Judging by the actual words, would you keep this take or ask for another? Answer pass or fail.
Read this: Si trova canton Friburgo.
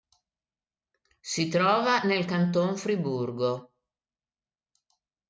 fail